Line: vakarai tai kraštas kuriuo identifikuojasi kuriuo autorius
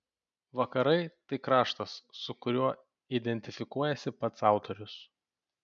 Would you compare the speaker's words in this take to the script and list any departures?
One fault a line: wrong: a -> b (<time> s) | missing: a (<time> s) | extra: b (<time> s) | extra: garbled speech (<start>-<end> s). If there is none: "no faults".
extra: su (2.2 s)
wrong: kuriuo -> pats (4.2 s)